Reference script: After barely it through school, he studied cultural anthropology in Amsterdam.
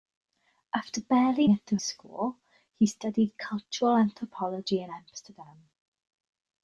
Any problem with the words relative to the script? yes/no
no